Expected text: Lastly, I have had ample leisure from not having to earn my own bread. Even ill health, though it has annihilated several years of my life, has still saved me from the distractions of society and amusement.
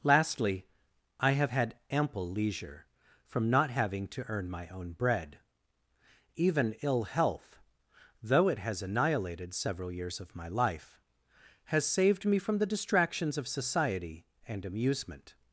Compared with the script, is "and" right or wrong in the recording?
right